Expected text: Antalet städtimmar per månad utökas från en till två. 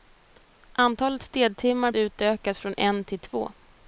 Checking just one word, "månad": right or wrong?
wrong